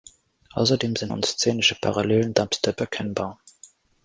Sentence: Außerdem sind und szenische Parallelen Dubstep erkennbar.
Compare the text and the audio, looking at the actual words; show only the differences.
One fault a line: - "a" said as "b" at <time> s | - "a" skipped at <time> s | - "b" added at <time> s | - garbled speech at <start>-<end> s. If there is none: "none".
none